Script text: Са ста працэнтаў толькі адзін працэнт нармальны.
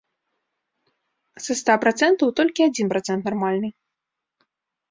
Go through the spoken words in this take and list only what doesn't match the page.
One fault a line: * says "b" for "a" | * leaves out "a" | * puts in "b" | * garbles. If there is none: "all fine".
all fine